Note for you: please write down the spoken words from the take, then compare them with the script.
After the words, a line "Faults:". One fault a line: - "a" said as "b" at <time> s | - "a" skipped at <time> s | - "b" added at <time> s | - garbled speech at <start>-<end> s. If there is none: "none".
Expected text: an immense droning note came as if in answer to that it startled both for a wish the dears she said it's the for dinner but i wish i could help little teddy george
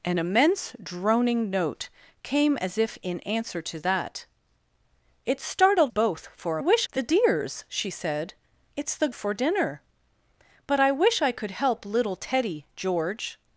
an immense droning note came as if in answer to that it startled both for a wish the dears she said it's the for dinner but i wish i could help little teddy george
Faults:
none